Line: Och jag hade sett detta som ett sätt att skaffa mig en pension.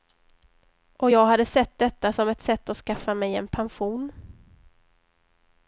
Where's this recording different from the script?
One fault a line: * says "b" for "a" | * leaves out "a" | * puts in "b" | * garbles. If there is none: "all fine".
all fine